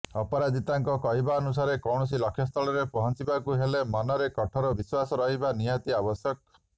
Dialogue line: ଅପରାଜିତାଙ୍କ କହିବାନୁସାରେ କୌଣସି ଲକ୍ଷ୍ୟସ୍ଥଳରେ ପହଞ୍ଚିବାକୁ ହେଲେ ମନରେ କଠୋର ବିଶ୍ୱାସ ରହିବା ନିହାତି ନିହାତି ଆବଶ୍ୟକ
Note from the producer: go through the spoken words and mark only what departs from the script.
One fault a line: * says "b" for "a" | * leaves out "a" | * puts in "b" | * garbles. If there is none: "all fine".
* leaves out "ନିହାତି"